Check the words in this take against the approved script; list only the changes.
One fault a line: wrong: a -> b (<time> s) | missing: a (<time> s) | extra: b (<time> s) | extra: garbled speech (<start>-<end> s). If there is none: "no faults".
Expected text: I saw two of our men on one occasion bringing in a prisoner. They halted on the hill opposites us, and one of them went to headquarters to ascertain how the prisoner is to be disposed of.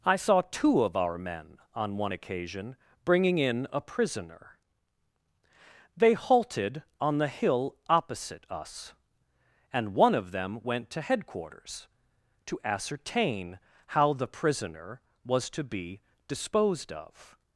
wrong: opposites -> opposite (7.9 s)
wrong: is -> was (15.2 s)